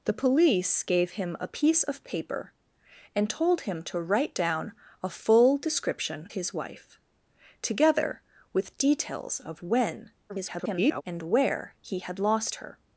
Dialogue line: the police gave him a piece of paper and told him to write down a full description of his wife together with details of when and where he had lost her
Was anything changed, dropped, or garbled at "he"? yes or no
no